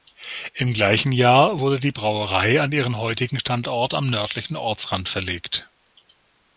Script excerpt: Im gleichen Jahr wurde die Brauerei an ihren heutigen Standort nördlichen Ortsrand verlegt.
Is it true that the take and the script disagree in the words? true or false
true